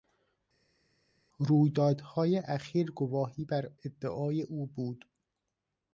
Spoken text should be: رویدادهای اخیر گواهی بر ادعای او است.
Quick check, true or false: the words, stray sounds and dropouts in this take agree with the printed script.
false